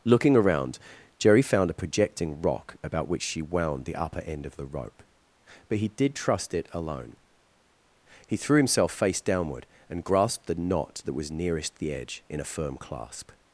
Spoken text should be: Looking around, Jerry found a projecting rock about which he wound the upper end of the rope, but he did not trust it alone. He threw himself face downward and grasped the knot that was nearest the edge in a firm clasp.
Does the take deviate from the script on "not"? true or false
true